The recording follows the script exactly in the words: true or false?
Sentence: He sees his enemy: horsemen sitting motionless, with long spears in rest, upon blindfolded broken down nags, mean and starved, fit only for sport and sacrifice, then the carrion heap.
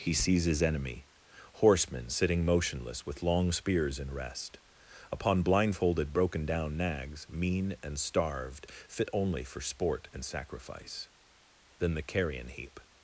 true